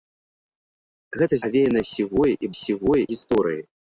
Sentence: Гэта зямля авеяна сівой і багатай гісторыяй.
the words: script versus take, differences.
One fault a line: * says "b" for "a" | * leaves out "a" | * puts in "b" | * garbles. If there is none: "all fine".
* leaves out "зямля"
* says "сівой" for "багатай"